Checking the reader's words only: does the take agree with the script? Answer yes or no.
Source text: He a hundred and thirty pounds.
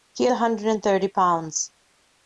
yes